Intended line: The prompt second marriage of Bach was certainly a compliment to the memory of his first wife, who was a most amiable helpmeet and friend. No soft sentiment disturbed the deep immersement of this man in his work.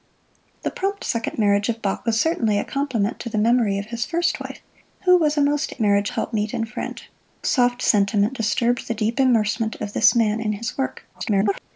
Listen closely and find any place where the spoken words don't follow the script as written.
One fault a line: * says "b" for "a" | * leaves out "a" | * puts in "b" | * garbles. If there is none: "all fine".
* says "marriage" for "amiable"
* leaves out "No"
* garbles